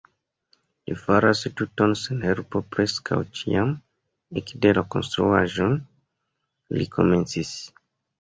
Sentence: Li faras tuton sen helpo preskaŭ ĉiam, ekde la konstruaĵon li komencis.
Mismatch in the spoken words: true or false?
false